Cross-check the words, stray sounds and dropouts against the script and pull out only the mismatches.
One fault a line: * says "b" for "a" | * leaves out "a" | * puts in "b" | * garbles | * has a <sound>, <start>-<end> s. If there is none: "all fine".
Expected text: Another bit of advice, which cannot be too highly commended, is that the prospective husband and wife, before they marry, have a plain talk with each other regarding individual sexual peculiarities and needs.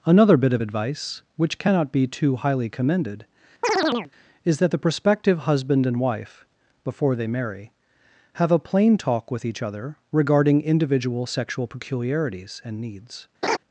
* has a chirp, 3.6-4.1 s
* has a laugh, 13.4-13.6 s